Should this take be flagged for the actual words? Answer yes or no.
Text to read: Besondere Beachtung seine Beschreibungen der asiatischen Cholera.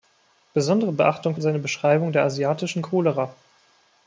no